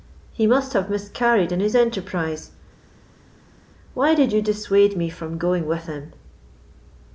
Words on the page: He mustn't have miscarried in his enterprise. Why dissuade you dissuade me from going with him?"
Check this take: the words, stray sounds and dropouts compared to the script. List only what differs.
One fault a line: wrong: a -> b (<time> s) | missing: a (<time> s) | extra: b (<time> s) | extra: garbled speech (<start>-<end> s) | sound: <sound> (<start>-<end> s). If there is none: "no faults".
wrong: mustn't -> must (0.5 s)
wrong: dissuade -> did (4.1 s)